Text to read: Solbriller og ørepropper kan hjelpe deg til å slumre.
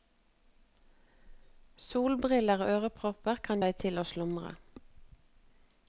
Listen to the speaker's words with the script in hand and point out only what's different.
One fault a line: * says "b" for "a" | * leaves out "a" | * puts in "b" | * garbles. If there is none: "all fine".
* leaves out "hjelpe"